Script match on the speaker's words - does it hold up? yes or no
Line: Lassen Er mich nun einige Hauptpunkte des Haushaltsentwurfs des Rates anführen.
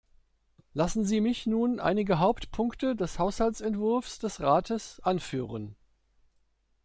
no